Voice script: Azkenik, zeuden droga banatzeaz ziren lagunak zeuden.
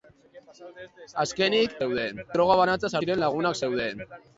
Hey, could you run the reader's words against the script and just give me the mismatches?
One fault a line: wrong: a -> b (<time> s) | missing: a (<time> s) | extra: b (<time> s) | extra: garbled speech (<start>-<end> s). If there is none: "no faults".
no faults